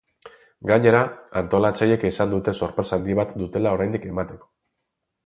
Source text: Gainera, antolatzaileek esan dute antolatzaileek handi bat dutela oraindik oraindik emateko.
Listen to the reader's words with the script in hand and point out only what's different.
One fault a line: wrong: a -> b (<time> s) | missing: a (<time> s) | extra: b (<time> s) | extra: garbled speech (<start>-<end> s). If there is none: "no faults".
wrong: antolatzaileek -> sorpresa (2.6 s)
missing: oraindik (4.1 s)